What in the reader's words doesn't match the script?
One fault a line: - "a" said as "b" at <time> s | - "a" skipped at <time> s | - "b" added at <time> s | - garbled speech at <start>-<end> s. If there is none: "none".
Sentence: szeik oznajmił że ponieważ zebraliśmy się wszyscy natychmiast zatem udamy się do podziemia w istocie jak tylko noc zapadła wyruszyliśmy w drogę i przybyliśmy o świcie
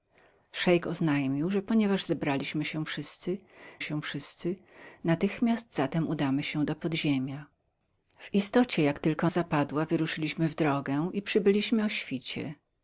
- "się wszyscy" added at 3.8 s
- "noc" skipped at 9.3 s